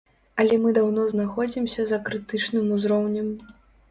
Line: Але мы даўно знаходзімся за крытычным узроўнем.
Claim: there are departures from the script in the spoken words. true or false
false